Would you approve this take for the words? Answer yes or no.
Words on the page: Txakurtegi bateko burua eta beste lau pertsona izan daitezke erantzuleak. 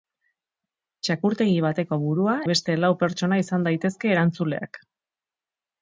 no